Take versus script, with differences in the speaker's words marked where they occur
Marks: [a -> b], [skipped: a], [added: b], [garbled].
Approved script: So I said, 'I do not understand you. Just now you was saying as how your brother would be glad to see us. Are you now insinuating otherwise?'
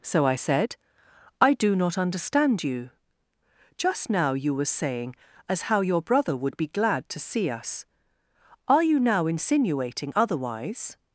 So I said, 'I do not understand you. Just now you [was -> were] saying as how your brother would be glad to see us. Are you now insinuating otherwise?'